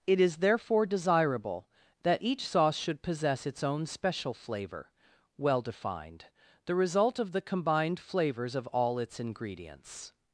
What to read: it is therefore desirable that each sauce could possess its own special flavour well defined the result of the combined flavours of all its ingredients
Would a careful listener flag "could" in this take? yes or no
yes